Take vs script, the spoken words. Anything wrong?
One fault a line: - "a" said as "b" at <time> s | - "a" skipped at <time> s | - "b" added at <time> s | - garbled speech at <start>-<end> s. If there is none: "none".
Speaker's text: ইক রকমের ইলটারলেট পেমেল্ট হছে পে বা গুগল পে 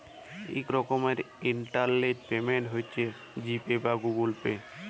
- "জি" added at 3.4 s